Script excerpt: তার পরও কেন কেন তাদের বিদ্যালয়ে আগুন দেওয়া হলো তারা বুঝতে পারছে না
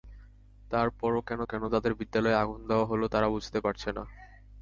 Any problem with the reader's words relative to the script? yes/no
no